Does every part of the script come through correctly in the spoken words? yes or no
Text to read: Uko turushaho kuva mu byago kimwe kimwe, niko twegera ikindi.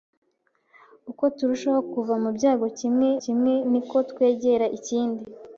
yes